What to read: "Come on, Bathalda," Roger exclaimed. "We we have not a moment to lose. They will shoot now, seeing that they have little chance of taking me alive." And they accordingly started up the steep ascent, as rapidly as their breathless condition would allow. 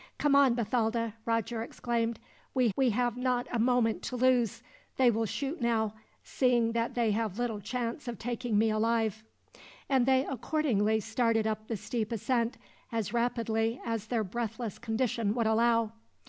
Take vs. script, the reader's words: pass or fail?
pass